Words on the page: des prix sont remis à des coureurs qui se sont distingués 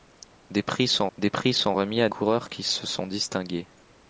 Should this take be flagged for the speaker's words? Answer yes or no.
yes